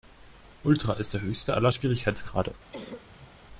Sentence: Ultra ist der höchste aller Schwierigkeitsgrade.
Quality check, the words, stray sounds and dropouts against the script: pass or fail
fail